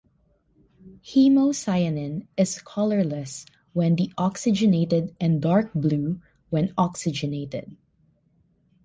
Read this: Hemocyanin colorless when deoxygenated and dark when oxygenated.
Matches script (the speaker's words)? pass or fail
fail